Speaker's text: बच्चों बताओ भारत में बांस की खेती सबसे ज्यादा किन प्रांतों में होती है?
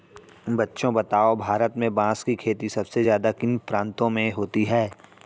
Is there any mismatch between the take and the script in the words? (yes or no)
no